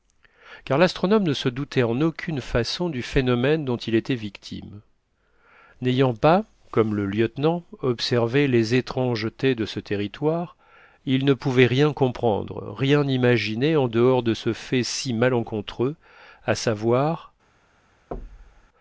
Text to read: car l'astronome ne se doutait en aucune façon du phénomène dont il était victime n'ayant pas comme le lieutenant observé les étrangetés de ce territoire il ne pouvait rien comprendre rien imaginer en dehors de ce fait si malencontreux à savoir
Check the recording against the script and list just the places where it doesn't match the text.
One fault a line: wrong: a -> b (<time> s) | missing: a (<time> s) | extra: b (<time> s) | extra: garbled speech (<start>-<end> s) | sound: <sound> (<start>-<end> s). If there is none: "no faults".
sound: thud (18.1-18.7 s)